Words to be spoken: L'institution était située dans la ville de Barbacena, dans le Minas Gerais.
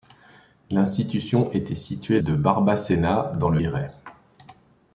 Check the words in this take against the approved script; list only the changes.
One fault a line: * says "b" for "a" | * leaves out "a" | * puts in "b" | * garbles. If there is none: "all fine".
* leaves out "dans la ville"
* leaves out "Minas"